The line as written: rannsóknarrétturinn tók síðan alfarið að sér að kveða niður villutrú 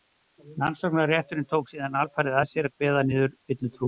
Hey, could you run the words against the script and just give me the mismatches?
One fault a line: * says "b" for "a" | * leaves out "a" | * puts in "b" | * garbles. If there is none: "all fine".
all fine